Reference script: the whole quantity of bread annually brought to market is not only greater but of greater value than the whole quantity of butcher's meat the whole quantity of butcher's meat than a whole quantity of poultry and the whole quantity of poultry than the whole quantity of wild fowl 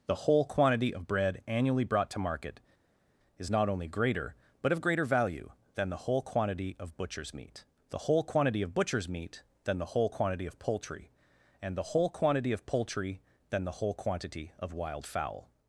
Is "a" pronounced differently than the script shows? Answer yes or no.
yes